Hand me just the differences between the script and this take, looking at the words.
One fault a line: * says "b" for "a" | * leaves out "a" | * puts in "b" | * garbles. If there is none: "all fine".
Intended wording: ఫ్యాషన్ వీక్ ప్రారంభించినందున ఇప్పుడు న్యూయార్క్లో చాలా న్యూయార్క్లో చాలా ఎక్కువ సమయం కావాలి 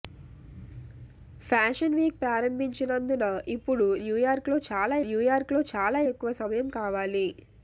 all fine